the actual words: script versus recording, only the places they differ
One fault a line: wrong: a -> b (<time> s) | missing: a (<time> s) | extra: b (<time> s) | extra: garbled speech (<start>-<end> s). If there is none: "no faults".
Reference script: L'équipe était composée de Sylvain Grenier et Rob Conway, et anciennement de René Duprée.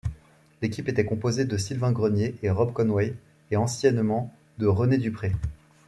no faults